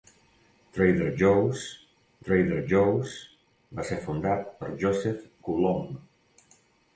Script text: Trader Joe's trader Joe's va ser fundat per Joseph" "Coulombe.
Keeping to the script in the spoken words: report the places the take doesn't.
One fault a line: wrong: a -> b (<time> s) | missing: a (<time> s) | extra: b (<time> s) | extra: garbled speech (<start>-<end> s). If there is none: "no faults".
no faults